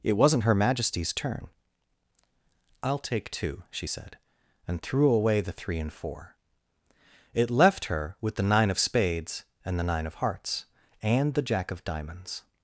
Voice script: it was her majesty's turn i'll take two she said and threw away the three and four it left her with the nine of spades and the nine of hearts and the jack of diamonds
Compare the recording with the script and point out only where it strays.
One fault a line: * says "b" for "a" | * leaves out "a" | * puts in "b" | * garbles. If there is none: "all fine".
* says "wasn't" for "was"